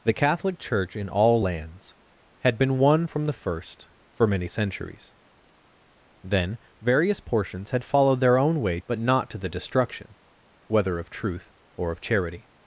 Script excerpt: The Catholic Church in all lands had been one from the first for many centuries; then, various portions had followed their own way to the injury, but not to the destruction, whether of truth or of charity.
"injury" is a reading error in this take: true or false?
true